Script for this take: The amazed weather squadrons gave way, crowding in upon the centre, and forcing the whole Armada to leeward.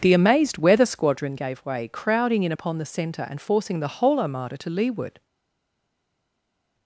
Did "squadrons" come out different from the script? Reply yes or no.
yes